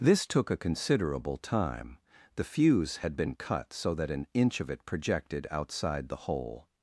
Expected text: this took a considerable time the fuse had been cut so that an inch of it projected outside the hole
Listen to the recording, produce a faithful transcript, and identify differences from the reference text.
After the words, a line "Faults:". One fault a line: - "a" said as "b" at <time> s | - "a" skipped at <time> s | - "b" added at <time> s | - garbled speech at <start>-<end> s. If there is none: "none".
this took a considerable time the fuse had been cut so that an inch of it projected outside the hole
Faults:
none